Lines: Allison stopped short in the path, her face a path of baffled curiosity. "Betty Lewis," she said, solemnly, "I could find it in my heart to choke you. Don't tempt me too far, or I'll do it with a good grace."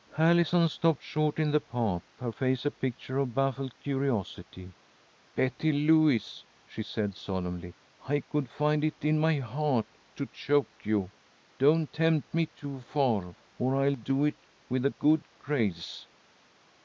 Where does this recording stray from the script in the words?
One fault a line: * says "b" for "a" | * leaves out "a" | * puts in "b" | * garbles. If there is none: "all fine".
* says "picture" for "path"